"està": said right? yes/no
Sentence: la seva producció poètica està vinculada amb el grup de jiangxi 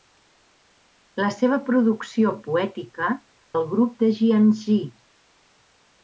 no